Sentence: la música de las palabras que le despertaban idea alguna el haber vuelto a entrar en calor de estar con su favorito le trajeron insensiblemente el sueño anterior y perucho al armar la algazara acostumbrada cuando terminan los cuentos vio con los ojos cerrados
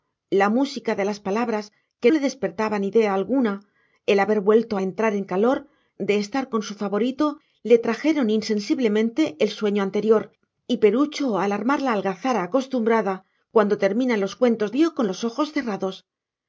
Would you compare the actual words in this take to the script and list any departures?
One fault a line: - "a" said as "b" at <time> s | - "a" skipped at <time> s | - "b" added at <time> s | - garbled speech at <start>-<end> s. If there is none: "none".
none